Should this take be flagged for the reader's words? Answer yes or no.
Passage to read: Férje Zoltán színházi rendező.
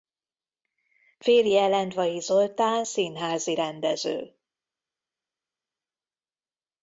yes